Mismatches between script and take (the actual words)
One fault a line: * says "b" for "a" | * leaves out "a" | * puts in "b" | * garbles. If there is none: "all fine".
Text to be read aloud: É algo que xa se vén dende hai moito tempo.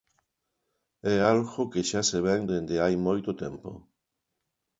all fine